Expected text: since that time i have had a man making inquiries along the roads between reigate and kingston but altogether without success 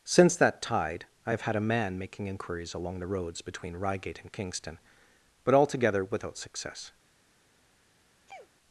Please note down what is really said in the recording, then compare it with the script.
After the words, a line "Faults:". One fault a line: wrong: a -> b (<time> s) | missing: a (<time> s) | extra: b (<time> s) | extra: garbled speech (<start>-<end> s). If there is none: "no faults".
since that tide i have had a man making inquiries along the roads between reigate and kingston but altogether without success
Faults:
wrong: time -> tide (0.6 s)